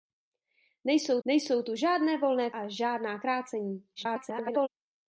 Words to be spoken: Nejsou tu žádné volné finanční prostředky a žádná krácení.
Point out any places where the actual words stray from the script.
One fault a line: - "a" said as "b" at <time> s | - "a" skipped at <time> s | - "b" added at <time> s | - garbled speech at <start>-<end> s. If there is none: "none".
- "nejsou" added at 1.2 s
- "finanční prostředky" skipped at 2.5 s
- garbled speech at 4.0-4.7 s